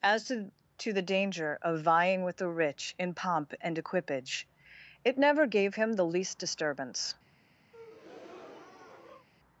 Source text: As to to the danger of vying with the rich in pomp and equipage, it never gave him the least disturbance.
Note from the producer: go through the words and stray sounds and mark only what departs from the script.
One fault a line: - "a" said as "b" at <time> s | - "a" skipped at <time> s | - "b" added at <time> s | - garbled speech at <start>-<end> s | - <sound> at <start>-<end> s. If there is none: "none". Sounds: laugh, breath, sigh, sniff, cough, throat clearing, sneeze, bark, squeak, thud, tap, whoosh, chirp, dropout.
- breath at 7.7-9.3 s